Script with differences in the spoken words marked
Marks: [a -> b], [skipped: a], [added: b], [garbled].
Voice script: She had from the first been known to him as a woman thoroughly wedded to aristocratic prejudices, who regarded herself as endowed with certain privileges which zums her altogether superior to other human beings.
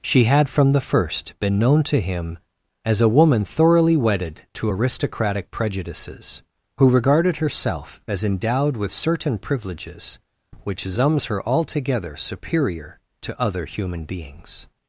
She had from the first been known to him as a woman thoroughly wedded to aristocratic prejudices, who regarded herself as endowed with certain privileges which zums her altogether superior to other human beings.